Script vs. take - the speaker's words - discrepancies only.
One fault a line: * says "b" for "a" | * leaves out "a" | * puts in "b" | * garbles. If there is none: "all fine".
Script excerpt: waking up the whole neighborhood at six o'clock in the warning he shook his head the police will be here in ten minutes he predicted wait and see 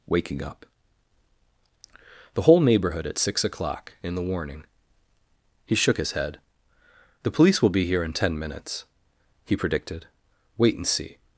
all fine